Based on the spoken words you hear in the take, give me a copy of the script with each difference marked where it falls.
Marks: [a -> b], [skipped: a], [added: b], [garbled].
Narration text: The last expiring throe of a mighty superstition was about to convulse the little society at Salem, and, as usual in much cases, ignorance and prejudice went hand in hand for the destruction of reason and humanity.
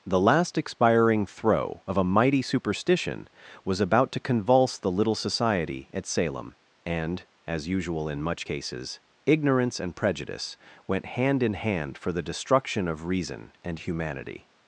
The last expiring throe of a mighty superstition was about to convulse the little society at Salem, and, as usual in much cases, ignorance and prejudice went hand in hand for the destruction of reason and humanity.